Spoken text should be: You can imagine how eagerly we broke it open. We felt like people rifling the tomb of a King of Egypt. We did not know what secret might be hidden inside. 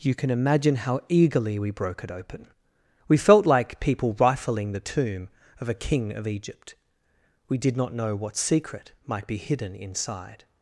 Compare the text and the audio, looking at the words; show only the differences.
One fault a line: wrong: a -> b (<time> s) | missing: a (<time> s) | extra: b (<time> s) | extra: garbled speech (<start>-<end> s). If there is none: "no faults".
no faults